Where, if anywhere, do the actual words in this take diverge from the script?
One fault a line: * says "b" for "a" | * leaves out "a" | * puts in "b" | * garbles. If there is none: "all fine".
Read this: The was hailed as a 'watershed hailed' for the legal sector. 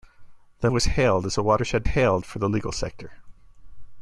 all fine